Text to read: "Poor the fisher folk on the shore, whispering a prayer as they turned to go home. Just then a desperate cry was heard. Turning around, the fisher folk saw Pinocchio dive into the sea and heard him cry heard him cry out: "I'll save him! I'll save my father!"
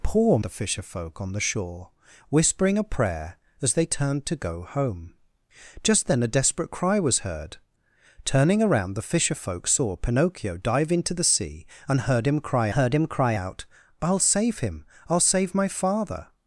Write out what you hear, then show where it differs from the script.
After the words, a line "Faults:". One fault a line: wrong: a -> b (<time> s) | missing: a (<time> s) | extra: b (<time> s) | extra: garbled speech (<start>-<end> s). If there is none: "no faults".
"Poor the fisher folk on the shore, whispering a prayer as they turned to go home. Just then a desperate cry was heard. Turning around, the fisher folk saw Pinocchio dive into the sea and heard him cry heard him cry out: "I'll save him! I'll save my father!"
Faults:
no faults